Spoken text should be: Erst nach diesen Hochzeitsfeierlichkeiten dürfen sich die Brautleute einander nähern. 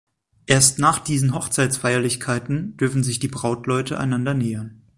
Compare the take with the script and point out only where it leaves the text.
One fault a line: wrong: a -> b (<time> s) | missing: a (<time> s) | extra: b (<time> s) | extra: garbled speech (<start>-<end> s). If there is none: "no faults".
no faults